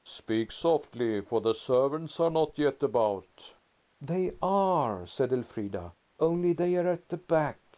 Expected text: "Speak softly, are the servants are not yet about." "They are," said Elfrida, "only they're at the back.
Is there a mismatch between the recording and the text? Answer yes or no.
yes